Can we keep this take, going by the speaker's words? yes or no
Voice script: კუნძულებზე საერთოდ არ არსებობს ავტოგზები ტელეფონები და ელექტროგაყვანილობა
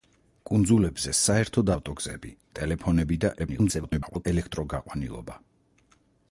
no